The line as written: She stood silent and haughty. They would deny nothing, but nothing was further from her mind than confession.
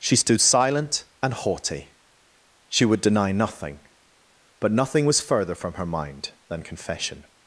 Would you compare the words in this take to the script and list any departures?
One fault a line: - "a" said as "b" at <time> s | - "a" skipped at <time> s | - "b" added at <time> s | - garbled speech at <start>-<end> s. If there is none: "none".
- "They" said as "She" at 2.7 s